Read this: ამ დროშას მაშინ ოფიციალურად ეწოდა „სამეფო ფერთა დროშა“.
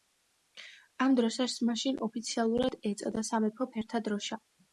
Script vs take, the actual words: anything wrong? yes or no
no